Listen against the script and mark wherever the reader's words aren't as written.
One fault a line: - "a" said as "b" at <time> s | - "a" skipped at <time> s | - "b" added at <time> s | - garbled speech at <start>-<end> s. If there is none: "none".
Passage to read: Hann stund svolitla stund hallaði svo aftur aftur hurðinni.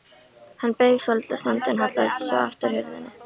- "stund" said as "beið" at 0.8 s
- "en" added at 1.7 s
- "aftur" skipped at 2.8 s